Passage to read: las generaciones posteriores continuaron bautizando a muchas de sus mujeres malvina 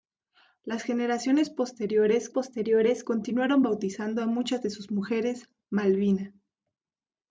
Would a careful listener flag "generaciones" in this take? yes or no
no